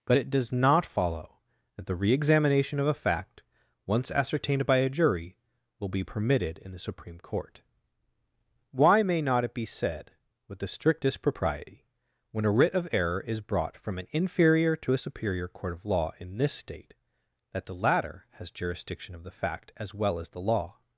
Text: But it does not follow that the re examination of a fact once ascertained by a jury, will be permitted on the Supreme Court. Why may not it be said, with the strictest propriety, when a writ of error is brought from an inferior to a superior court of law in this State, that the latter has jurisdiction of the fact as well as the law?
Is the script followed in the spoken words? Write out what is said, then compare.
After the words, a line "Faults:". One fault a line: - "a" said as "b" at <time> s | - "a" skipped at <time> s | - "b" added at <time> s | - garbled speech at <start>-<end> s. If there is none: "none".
But it does not follow that the re examination of a fact once ascertained by a jury, will be permitted in the Supreme Court. Why may not it be said, with the strictest propriety, when a writ of error is brought from an inferior to a superior court of law in this State, that the latter has jurisdiction of the fact as well as the law?
Faults:
- "on" said as "in" at 6.6 s